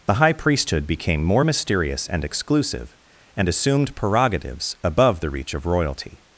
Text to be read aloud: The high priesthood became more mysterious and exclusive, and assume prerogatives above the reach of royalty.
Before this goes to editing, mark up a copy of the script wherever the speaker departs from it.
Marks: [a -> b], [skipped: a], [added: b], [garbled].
The high priesthood became more mysterious and exclusive, and [assume -> assumed] prerogatives above the reach of royalty.